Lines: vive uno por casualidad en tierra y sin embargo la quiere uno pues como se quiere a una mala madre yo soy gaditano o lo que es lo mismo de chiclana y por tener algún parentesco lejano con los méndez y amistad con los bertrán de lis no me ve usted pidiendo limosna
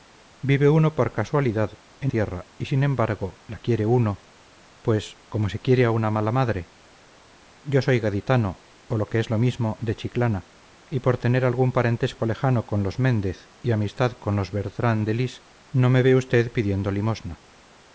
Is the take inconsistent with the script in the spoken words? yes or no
no